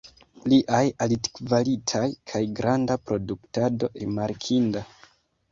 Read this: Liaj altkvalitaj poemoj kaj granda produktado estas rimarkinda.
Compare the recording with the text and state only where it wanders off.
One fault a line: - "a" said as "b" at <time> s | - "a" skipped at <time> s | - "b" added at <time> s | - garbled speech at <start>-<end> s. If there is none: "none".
- "poemoj" skipped at 2.0 s
- "estas" skipped at 3.9 s